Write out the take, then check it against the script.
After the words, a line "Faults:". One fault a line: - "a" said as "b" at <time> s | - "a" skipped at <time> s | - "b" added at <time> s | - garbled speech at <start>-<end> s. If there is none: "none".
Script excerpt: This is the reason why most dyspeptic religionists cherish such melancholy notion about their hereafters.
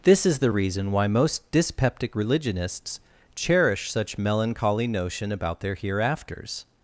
This is the reason why most dyspeptic religionists cherish such melancholy notion about their hereafters.
Faults:
none